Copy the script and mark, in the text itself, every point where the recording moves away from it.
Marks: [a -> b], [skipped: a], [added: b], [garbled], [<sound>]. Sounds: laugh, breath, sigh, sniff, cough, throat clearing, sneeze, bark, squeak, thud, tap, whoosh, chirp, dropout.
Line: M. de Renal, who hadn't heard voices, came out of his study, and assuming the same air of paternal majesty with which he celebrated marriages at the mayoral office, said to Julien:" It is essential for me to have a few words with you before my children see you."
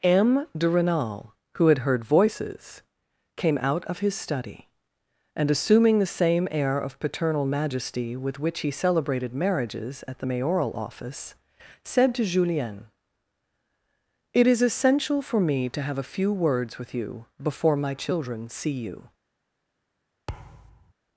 M. de Renal, who [hadn't -> had] heard voices, came out of his study, and assuming the same air of paternal majesty with which he celebrated marriages at the mayoral office, said to Julien:" It is essential for me to have a few words with you before my children see you." [thud]